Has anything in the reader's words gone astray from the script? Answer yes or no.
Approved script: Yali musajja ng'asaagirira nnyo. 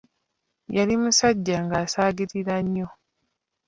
no